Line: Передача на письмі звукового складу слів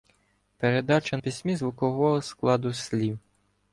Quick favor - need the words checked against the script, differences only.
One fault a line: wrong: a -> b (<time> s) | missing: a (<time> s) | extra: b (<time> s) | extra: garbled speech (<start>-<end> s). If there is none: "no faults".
missing: на (1.2 s)